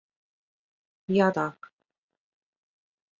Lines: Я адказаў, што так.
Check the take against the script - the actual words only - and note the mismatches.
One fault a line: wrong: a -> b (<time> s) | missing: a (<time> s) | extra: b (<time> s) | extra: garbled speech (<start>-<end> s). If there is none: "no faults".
missing: адказаў што (1.3 s)